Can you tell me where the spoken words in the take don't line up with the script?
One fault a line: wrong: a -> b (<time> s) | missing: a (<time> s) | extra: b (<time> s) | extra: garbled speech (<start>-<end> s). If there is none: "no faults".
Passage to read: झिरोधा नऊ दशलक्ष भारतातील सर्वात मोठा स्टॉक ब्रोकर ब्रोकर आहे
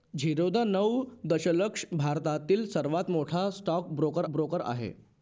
no faults